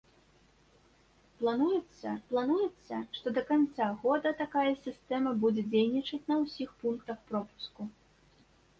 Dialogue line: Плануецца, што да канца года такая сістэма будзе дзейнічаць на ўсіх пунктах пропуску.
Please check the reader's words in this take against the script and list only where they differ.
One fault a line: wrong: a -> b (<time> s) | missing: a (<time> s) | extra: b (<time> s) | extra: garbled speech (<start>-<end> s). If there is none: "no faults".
extra: плануецца (2.3 s)